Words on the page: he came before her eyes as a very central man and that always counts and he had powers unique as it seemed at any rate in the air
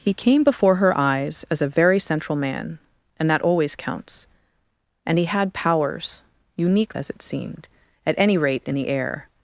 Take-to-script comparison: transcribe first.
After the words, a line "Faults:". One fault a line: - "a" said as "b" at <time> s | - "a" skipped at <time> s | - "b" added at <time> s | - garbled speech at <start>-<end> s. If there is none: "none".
he came before her eyes as a very central man and that always counts and he had powers unique as it seemed at any rate in the air
Faults:
none